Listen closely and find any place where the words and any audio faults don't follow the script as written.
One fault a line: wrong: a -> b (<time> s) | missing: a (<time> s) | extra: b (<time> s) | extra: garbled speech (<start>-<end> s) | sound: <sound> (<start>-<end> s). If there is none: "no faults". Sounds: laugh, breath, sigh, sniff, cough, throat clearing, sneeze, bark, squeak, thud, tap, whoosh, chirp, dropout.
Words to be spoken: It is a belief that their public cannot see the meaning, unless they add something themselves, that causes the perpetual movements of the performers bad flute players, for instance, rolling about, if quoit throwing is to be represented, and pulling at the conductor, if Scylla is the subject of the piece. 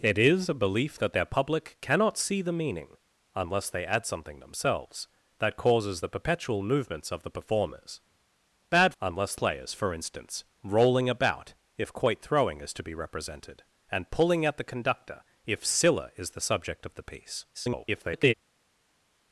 wrong: flute -> unless (9.0 s)
extra: garbled speech (17.5-18.3 s)